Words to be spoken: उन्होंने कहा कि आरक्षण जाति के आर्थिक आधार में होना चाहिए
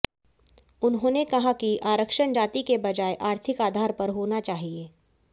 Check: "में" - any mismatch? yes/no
yes